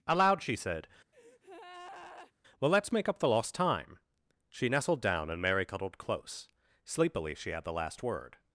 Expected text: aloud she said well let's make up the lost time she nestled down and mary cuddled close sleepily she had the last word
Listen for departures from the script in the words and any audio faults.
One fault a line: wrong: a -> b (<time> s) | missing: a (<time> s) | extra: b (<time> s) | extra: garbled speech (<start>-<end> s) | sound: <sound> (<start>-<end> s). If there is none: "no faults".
sound: breath (1.1-2.3 s)